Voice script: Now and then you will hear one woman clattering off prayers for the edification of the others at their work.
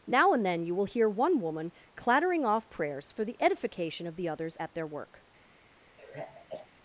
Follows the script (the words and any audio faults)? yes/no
no